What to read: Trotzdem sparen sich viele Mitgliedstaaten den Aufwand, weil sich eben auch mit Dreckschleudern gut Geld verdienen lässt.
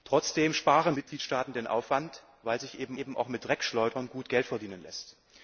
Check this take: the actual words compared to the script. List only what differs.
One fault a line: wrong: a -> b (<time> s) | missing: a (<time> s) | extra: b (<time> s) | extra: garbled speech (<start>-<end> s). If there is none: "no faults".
missing: sich viele (0.9 s)
extra: eben (3.0 s)